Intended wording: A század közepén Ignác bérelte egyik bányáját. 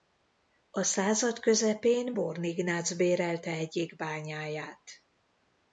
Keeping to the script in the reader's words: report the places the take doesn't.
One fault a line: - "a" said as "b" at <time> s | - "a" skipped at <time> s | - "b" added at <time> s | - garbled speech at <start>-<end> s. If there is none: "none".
- "Born" added at 2.1 s